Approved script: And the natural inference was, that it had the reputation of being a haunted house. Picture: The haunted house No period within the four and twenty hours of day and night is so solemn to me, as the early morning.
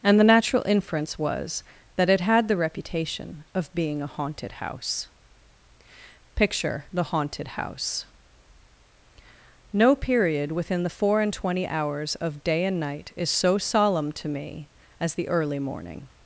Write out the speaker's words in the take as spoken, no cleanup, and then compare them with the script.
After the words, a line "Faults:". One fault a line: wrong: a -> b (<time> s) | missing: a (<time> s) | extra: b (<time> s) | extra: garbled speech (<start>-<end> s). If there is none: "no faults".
And the natural inference was, that it had the reputation of being a haunted house. Picture: The haunted house No period within the four and twenty hours of day and night is so solemn to me, as the early morning.
Faults:
no faults